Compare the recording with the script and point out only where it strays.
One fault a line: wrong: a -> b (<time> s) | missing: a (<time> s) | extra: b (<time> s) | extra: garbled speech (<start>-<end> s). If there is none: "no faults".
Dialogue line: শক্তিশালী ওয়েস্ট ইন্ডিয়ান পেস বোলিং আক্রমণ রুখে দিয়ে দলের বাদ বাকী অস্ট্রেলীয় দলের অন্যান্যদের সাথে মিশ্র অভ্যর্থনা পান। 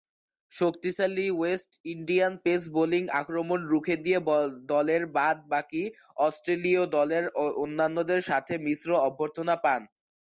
no faults